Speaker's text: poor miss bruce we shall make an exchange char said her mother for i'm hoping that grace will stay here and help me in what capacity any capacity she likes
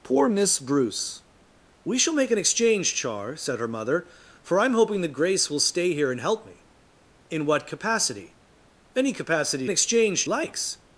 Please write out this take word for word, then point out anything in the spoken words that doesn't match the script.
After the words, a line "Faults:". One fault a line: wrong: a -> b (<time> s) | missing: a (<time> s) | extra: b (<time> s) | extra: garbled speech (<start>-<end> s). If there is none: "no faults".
poor miss bruce we shall make an exchange char said her mother for i'm hoping that grace will stay here and help me in what capacity any capacity exchange likes
Faults:
wrong: she -> exchange (9.7 s)